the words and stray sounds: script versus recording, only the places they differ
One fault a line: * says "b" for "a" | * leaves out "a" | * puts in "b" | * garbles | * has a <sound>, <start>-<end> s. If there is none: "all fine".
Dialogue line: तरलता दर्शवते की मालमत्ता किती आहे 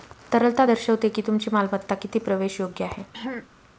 * puts in "तुमची"
* puts in "प्रवेशयोग्य"
* has a throat clearing, 3.1-3.5 s